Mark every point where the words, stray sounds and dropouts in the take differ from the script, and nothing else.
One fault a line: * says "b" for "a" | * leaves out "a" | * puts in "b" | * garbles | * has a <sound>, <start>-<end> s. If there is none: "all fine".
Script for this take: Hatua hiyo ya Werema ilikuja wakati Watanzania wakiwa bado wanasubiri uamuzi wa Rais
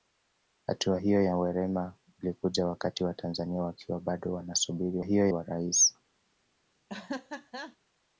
* says "hiyo" for "uamuzi"
* has a laugh, 6.9-7.8 s